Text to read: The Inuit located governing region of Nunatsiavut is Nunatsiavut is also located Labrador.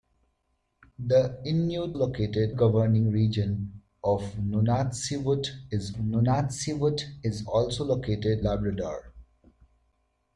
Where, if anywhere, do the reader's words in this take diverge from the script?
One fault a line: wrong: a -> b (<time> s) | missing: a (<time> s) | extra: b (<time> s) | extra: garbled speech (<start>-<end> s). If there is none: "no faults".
no faults